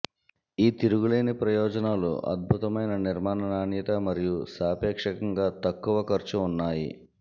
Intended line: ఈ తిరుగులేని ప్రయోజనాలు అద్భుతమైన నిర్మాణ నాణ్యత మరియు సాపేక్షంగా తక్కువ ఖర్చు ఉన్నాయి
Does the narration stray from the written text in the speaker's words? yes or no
no